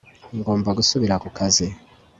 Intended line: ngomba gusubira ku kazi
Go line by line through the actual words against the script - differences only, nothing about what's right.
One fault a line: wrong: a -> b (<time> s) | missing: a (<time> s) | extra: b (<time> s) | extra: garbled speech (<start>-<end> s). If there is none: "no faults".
no faults